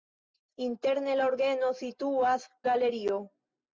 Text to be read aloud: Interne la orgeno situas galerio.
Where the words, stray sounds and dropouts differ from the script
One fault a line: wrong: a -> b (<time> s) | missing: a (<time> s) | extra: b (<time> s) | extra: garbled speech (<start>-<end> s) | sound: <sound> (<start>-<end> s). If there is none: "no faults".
no faults